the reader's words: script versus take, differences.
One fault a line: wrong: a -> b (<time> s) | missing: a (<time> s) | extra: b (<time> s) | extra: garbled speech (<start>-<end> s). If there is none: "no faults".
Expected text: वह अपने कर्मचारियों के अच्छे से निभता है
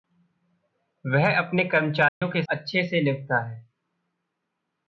no faults